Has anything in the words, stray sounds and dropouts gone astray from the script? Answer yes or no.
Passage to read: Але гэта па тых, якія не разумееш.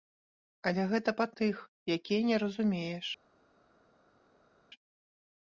no